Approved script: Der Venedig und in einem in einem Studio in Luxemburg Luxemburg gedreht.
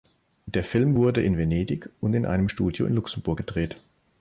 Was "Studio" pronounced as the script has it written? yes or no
yes